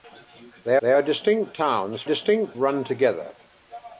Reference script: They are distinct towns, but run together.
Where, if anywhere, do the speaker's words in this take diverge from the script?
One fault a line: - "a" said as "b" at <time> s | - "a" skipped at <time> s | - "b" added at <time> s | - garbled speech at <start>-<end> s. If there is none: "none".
- "they" added at 0.8 s
- "but" said as "distinct" at 2.0 s